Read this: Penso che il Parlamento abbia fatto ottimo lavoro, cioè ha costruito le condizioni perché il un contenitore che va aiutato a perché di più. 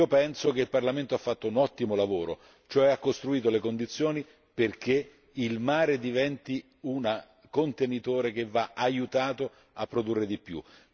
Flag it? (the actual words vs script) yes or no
yes